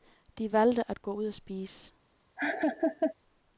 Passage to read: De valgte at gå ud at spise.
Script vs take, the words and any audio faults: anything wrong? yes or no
yes